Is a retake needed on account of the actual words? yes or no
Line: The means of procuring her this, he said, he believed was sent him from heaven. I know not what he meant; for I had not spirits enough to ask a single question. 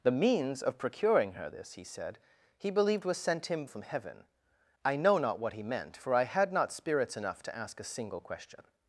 no